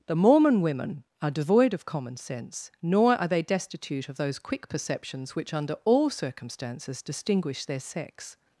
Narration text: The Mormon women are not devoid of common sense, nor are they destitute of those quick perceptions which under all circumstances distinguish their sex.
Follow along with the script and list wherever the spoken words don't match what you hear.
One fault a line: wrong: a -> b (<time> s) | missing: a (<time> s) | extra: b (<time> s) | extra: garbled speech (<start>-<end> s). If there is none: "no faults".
missing: not (1.3 s)